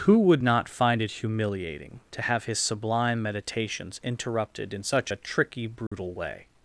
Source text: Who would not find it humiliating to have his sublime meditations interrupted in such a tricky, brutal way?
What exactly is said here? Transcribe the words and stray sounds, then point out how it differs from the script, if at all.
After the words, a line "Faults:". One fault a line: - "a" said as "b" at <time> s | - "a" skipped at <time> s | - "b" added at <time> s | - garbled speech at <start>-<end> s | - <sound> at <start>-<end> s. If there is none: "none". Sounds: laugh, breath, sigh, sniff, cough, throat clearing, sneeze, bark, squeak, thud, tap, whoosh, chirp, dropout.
Who would not find it humiliating to have his sublime meditations interrupted in such a tricky, brutal way?
Faults:
- dropout at 5.9-5.9 s